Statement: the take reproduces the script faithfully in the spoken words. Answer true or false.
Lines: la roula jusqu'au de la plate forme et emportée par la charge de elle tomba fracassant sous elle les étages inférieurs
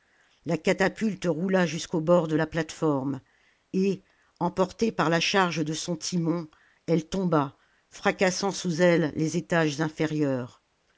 false